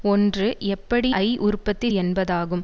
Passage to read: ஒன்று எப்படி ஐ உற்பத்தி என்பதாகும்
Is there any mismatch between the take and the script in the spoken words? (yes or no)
no